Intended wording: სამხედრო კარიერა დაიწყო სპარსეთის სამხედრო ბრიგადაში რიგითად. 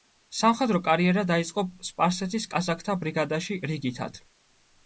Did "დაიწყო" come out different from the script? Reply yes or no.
no